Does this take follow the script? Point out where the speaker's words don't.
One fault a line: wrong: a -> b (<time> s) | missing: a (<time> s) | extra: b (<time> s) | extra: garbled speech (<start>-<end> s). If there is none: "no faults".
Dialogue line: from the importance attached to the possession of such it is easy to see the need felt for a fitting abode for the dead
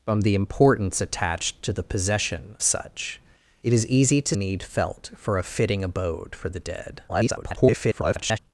missing: of (2.6 s)
missing: see the (4.3 s)
extra: garbled speech (7.1-8.4 s)